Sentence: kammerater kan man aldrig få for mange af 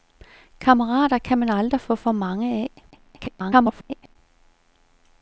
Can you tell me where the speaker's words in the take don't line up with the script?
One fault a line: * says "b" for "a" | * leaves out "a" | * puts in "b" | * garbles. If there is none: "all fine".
* garbles